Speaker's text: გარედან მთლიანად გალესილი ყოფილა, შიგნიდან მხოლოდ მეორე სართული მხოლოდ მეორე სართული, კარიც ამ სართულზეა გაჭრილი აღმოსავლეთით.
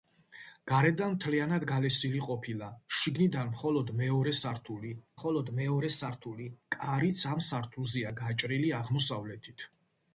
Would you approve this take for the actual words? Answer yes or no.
yes